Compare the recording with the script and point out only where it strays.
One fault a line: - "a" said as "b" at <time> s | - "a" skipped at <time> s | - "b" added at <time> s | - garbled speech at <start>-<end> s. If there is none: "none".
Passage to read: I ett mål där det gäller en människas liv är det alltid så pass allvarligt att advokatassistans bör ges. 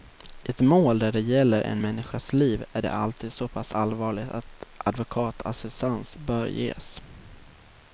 none